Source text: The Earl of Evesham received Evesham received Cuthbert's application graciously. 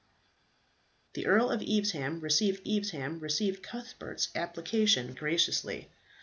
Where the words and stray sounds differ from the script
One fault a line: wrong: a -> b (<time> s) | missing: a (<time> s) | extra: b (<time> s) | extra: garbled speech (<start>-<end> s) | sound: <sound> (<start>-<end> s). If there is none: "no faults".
no faults